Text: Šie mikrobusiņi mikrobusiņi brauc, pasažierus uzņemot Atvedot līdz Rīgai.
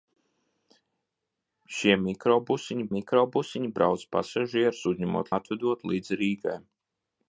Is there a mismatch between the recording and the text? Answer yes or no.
no